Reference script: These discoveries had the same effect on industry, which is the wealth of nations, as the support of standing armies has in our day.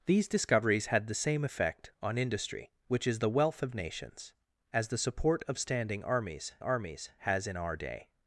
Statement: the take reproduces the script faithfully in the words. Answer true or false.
false